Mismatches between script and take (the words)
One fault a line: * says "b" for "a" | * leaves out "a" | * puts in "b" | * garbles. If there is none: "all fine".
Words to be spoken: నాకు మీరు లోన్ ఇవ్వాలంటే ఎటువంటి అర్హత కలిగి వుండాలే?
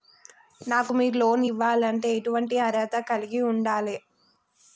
all fine